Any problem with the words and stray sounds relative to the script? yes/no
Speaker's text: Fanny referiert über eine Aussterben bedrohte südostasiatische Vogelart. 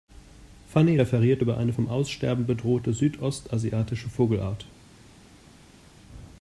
yes